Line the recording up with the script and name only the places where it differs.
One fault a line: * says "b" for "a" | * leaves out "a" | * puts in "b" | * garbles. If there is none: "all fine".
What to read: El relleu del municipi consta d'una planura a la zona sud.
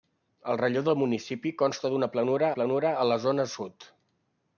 * puts in "planura"